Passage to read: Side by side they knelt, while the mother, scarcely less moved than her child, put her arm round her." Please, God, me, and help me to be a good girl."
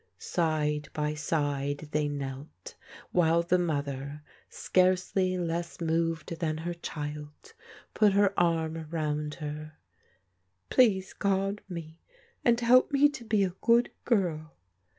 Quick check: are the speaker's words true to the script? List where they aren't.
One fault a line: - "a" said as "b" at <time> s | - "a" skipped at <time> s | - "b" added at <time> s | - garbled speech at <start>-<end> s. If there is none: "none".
none